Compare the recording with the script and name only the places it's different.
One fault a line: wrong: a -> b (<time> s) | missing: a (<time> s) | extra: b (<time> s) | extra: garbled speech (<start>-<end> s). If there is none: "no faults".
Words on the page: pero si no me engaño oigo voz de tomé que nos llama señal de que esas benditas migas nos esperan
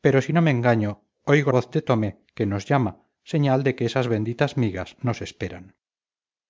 no faults